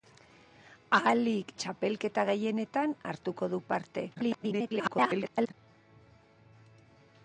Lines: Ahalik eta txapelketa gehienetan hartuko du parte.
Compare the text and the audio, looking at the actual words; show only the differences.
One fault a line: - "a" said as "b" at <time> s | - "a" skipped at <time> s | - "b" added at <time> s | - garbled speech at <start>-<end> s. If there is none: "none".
- "eta" skipped at 1.5 s
- garbled speech at 4.1-5.5 s